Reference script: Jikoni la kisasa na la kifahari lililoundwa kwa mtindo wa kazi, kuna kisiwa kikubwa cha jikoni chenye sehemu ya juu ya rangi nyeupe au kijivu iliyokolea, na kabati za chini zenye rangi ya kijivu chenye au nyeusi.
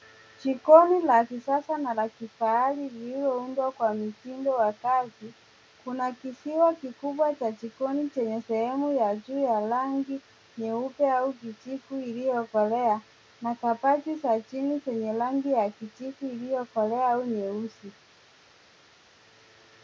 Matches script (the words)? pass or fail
fail